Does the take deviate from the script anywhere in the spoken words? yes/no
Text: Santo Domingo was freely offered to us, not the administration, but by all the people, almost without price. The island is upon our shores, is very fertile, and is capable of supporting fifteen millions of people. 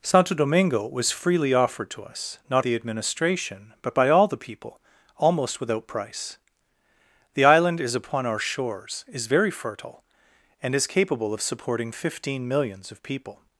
no